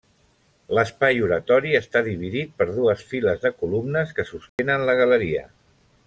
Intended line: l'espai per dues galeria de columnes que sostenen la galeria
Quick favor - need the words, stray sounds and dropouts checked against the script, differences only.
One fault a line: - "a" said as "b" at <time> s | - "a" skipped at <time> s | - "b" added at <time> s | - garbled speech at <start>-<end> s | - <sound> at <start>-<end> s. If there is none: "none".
- "oratori està dividit" added at 1.2 s
- "galeria" said as "files" at 3.1 s
- dropout at 4.5-4.6 s